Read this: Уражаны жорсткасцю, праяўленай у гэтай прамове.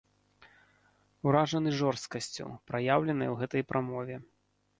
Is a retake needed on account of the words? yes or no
no